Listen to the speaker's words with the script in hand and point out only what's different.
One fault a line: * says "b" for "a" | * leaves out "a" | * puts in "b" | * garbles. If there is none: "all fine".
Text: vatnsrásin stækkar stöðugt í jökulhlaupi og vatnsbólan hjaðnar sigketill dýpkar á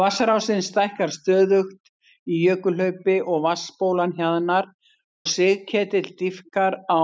all fine